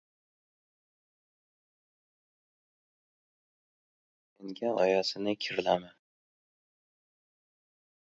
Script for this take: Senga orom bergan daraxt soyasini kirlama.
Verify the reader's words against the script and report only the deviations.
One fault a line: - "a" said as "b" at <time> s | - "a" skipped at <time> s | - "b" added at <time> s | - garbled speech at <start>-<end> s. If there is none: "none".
- "orom bergan daraxt" skipped at 4.7 s